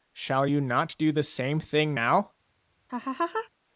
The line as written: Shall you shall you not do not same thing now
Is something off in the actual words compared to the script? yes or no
yes